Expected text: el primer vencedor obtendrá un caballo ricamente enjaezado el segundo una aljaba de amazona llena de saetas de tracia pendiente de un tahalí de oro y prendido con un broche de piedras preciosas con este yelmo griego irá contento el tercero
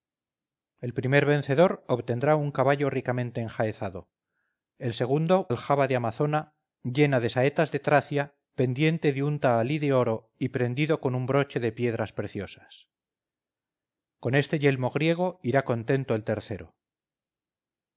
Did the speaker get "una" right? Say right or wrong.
wrong